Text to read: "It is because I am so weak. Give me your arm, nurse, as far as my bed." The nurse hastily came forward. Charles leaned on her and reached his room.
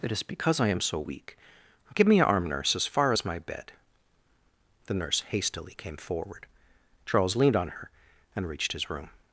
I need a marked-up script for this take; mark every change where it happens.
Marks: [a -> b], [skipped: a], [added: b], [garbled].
"It is because I am so weak. Give me your arm, nurse, as far as my bed." The nurse hastily came forward. Charles leaned on her and reached his room.